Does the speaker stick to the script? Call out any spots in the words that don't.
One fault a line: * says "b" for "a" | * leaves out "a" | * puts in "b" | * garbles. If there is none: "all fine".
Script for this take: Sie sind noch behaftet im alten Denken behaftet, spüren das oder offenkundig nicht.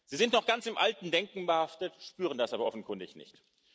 * says "ganz" for "behaftet"
* says "aber" for "oder"